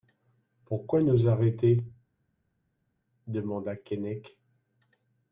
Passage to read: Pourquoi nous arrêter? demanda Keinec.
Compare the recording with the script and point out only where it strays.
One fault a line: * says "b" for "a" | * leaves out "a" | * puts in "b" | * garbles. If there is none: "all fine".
all fine